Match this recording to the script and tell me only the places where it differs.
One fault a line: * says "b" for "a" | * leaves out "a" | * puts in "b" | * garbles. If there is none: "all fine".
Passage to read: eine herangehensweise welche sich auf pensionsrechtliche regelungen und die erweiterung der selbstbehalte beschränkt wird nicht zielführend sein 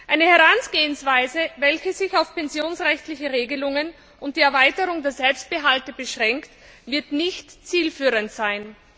all fine